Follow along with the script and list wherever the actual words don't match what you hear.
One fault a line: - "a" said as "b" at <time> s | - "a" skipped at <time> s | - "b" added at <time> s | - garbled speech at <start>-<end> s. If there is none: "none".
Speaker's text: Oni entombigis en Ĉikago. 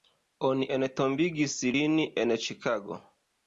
- "lin" added at 1.8 s